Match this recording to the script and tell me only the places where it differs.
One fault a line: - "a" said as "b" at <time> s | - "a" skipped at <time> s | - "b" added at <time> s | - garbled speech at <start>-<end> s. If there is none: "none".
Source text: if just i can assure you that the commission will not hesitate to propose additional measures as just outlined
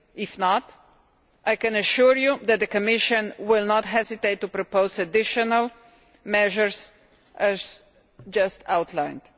- "just" said as "not" at 0.4 s